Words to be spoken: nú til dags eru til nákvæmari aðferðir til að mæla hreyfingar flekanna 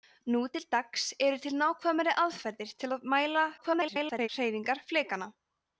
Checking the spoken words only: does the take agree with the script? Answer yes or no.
no